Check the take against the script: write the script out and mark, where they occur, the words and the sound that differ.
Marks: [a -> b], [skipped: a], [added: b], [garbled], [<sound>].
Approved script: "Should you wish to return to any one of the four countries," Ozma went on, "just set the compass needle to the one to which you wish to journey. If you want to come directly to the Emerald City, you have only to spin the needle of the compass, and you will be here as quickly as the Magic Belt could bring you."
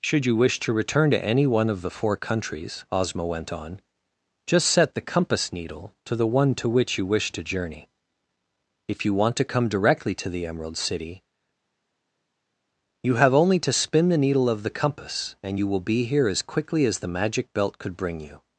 "Should you wish to return to any one of the four countries," Ozma went on, "just set the compass needle to the one to which you wish to journey. If you want to come directly to the Emerald City, you have only to spin the needle of the compass, and you will be here as quickly as the Magic Belt could bring you."